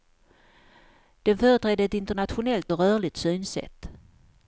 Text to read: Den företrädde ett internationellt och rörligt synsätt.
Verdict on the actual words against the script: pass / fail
pass